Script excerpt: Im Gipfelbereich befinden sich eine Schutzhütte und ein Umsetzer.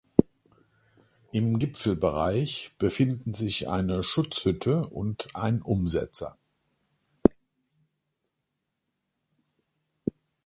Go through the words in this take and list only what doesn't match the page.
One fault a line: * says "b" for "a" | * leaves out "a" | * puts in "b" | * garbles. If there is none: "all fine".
all fine